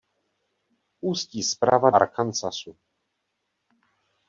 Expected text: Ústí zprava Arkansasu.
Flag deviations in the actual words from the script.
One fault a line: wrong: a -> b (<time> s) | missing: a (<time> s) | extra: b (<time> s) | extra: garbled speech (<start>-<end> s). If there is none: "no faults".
no faults